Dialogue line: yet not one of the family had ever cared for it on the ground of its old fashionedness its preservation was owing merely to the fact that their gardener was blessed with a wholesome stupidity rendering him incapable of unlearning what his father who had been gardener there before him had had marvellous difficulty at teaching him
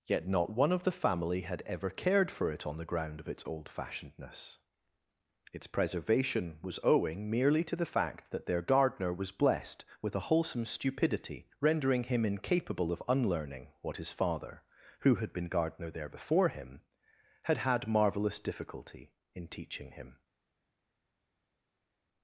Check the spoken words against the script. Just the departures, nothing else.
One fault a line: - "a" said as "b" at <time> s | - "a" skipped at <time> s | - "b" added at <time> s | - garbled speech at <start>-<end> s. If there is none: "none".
- "at" said as "in" at 19.3 s